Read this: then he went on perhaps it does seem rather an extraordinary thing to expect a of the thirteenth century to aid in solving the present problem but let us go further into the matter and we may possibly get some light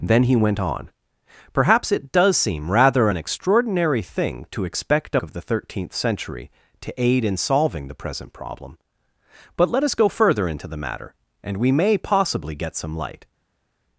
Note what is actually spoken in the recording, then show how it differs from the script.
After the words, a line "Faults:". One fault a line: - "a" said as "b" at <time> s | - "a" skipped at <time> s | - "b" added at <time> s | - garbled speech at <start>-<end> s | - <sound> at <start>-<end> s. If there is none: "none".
then he went on perhaps it does seem rather an extraordinary thing to expect a of the thirteenth century to aid in solving the present problem but let us go further into the matter and we may possibly get some light
Faults:
none